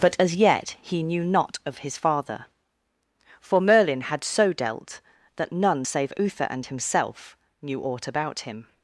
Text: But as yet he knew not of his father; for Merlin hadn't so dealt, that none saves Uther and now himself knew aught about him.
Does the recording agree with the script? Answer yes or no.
no